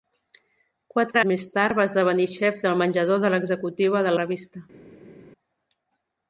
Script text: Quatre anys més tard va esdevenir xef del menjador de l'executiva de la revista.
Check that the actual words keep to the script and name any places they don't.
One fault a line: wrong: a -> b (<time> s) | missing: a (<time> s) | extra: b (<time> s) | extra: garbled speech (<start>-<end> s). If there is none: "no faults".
missing: anys (1.2 s)
missing: la (4.1 s)